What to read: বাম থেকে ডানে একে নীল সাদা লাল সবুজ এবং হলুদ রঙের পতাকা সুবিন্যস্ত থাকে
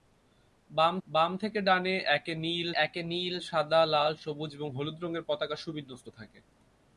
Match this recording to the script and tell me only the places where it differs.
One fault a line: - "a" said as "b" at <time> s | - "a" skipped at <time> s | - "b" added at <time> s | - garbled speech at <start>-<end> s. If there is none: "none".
- "বাম" added at 1.1 s
- "একে নীল" added at 2.8 s